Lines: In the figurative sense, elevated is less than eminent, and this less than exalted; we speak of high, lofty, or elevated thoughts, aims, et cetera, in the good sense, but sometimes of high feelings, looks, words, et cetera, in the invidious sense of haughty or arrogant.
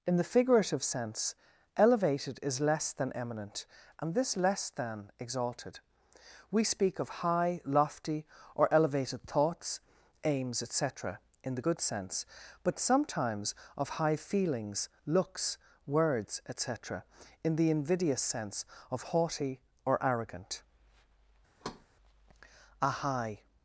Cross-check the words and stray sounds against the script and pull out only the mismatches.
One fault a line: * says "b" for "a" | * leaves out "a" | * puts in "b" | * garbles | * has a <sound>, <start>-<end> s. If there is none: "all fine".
* has a thud, 21.6-21.9 s
* puts in "A high"